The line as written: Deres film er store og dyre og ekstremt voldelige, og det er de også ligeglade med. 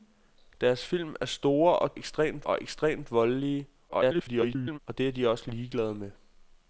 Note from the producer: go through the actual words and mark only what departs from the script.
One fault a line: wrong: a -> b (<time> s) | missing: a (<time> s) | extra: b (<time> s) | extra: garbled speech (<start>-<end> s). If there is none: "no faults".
wrong: dyre -> ekstremt (2.0 s)
extra: garbled speech (3.9-4.8 s)